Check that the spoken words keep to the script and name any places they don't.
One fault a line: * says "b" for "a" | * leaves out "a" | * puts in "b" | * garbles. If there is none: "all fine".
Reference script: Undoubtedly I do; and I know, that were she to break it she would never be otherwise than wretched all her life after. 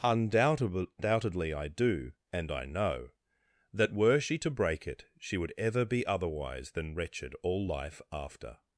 * says "ever" for "never"
* leaves out "her"